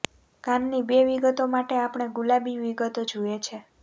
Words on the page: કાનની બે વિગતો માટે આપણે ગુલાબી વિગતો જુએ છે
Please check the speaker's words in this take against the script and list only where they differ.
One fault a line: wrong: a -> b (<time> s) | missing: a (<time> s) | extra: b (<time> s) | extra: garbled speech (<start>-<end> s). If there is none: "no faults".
no faults